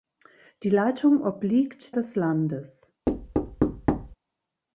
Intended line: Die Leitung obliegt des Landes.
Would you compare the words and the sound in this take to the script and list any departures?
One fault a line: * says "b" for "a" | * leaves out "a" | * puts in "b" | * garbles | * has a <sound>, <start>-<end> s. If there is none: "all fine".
* has a thud, 3.1-4.2 s